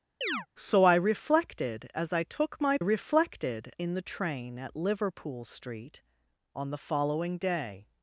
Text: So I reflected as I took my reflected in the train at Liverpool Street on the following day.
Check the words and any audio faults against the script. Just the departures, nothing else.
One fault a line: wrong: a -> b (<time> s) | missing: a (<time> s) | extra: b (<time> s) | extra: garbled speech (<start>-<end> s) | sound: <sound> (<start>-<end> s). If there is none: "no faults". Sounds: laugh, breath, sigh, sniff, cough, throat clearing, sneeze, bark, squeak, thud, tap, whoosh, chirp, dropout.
sound: chirp (0.2-0.5 s)